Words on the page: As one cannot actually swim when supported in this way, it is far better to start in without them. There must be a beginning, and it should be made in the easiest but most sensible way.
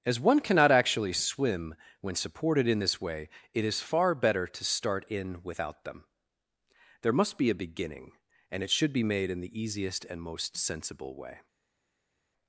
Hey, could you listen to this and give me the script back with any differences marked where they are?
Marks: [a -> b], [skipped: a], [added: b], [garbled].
As one cannot actually swim when supported in this way, it is far better to start in without them. There must be a beginning, and it should be made in the easiest [but -> and] most sensible way.